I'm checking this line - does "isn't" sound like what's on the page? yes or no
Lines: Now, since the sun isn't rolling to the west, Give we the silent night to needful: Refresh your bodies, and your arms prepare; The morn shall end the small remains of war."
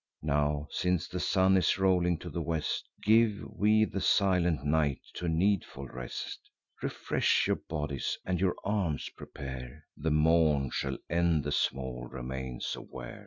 no